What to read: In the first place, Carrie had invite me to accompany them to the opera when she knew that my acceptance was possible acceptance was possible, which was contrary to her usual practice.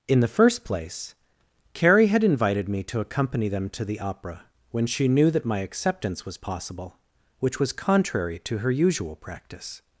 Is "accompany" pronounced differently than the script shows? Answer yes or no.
no